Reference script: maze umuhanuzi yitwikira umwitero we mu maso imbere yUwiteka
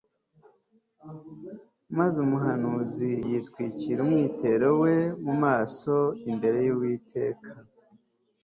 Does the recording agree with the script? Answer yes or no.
yes